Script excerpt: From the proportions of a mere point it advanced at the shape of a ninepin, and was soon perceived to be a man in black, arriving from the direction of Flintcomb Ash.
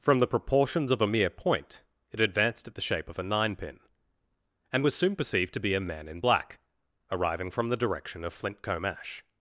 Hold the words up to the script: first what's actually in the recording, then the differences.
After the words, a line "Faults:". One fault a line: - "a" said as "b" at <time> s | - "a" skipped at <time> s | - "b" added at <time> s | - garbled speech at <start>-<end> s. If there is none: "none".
From the proportions of a mere point it advanced at the shape of a ninepin, and was soon perceived to be a man in black, arriving from the direction of Flintcomb Ash.
Faults:
none